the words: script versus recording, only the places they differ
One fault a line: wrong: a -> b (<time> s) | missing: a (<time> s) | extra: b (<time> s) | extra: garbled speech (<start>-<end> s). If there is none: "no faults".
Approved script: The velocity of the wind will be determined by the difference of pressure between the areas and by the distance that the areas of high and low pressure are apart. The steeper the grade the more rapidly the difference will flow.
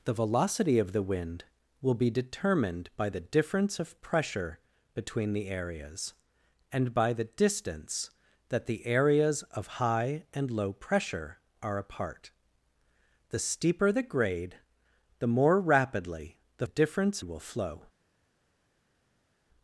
no faults